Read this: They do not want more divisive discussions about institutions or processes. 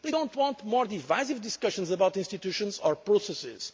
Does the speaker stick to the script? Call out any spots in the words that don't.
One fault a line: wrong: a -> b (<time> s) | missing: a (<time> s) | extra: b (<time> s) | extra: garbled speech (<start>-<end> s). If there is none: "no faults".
no faults